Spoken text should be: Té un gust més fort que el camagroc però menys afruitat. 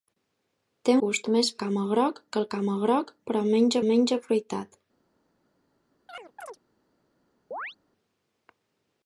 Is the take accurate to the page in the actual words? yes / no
no